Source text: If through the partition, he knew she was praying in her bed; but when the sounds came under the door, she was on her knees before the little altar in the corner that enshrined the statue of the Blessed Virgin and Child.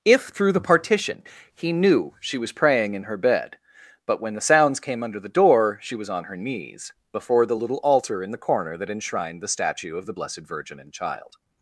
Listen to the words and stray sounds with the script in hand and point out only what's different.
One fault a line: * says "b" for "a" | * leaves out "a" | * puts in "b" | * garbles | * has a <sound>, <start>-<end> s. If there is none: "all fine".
all fine